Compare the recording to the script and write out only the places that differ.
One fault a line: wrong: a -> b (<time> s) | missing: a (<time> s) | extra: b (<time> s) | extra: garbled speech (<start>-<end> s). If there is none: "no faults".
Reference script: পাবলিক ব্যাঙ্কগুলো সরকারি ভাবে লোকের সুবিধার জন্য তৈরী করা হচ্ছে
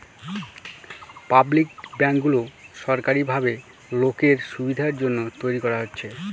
no faults